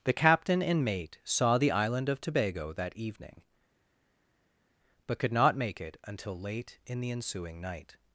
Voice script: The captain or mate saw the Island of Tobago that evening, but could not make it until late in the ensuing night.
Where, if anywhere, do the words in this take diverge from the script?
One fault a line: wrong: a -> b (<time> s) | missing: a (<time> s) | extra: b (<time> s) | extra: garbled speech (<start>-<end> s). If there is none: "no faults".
wrong: or -> and (0.6 s)